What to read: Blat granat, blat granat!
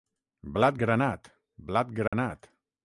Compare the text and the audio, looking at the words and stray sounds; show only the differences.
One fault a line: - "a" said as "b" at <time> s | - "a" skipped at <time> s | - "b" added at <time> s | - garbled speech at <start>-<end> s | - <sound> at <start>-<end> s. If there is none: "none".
- dropout at 2.1-2.1 s